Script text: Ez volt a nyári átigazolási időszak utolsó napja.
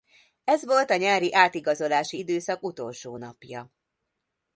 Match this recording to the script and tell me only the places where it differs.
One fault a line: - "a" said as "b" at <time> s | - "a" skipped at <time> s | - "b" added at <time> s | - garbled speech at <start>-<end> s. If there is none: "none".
none